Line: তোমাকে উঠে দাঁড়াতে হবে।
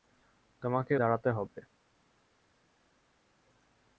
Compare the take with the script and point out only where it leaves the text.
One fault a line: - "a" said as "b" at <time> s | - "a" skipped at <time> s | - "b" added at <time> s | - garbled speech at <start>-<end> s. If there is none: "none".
- "উঠে" skipped at 0.9 s